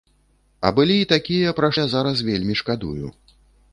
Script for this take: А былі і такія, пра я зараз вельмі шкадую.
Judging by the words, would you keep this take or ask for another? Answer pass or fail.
pass